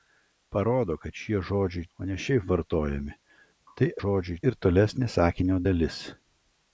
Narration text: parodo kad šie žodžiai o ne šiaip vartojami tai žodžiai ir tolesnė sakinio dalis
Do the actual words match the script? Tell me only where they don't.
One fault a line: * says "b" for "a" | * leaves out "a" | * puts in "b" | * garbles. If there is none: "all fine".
all fine